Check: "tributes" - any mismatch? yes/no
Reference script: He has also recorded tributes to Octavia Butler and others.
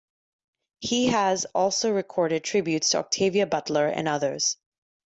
no